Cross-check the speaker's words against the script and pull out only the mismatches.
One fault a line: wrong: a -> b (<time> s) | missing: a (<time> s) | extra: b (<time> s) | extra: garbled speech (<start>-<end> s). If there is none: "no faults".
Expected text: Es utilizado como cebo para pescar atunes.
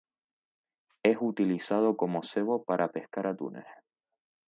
no faults